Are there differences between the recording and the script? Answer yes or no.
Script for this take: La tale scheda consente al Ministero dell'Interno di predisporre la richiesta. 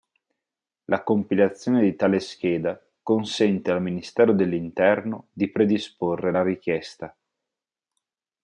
yes